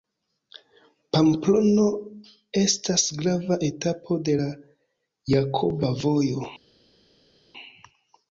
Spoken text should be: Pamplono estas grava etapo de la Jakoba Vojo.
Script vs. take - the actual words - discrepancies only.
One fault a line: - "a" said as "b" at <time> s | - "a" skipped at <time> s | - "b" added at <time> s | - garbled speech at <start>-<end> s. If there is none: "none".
none